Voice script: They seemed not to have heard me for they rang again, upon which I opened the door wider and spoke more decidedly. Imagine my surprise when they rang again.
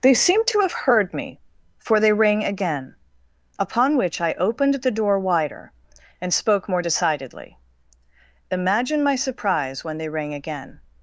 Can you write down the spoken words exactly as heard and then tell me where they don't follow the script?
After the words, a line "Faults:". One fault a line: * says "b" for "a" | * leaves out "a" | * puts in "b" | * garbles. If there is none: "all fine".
They seemed to have heard me for they rang again, upon which I opened the door wider and spoke more decidedly. Imagine my surprise when they rang again.
Faults:
* leaves out "not"